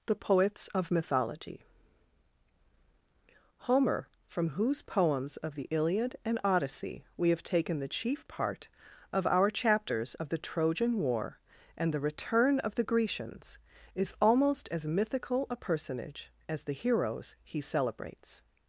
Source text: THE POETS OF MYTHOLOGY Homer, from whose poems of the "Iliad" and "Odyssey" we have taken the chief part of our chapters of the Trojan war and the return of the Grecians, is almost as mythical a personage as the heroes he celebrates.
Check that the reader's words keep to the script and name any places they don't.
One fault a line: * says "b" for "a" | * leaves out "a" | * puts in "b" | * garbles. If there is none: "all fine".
all fine